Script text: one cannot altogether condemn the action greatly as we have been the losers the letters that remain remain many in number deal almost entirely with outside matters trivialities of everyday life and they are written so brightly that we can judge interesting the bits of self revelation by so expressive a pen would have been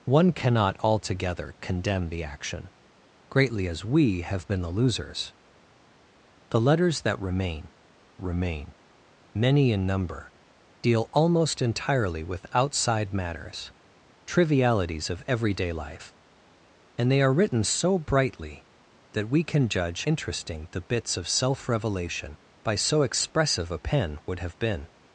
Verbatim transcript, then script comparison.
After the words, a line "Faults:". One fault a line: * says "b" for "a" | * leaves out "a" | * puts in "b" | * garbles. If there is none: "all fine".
one cannot altogether condemn the action greatly as we have been the losers the letters that remain remain many in number deal almost entirely with outside matters trivialities of everyday life and they are written so brightly that we can judge interesting the bits of self revelation by so expressive a pen would have been
Faults:
all fine